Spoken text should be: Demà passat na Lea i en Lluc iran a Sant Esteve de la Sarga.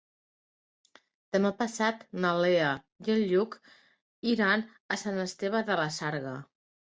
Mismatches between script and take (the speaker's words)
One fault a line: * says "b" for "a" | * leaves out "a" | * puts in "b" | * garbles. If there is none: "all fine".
all fine